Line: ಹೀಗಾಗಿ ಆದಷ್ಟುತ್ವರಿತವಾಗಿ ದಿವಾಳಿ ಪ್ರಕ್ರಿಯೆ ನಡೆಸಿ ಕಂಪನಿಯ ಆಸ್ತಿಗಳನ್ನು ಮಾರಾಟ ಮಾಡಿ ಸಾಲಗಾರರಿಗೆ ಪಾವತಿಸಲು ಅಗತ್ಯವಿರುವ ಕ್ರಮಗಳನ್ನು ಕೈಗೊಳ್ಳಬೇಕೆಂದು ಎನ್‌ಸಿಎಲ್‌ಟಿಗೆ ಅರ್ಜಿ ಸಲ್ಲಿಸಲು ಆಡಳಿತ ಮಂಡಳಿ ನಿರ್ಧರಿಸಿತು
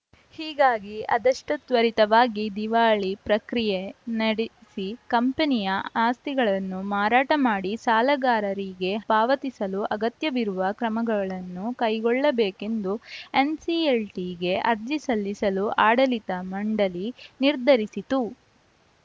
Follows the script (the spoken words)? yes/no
yes